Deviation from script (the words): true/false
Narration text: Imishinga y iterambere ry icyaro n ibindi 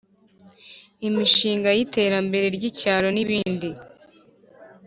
false